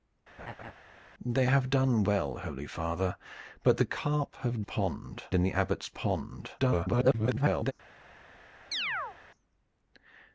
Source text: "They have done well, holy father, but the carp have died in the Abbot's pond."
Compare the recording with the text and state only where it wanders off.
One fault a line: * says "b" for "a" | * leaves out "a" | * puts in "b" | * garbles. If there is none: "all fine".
* says "pond" for "died"
* garbles